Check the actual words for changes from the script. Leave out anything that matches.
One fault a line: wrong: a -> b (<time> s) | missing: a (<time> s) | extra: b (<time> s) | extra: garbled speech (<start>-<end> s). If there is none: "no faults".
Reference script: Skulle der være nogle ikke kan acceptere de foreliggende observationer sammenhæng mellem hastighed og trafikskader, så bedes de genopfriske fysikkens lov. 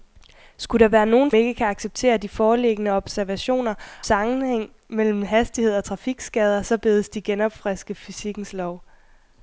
no faults